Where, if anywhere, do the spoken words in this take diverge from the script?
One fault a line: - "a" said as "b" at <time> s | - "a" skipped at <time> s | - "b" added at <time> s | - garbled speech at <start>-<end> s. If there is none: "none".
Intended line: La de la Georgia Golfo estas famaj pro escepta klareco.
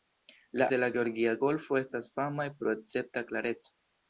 none